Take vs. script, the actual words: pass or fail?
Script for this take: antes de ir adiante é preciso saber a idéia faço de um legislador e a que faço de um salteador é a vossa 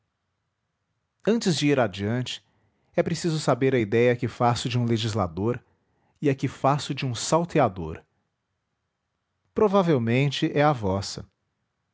fail